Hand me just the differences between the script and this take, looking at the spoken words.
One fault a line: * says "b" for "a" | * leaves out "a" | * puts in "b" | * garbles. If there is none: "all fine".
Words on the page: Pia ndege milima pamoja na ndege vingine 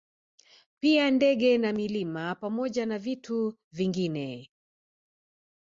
* puts in "na"
* says "vitu" for "ndege"